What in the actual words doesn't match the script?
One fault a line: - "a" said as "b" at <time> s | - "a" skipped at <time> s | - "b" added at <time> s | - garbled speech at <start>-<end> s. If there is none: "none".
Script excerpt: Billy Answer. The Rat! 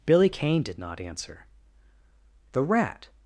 - "Kane did not" added at 0.3 s